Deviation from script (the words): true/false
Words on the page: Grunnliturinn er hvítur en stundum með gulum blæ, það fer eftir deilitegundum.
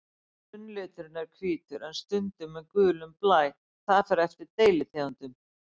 false